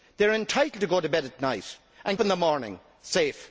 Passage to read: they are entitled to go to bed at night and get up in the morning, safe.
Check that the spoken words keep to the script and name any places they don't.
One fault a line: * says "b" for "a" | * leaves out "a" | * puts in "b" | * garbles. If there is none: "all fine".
* leaves out "get up"